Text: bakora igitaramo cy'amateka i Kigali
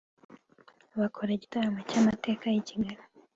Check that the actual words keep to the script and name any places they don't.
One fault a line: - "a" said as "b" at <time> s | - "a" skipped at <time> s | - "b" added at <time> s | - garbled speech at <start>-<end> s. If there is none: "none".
none